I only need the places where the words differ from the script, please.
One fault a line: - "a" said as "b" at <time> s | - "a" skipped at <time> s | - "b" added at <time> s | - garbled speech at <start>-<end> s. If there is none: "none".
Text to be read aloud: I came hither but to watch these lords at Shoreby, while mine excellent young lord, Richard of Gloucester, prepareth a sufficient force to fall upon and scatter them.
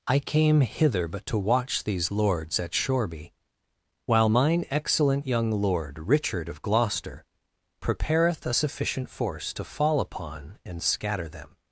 none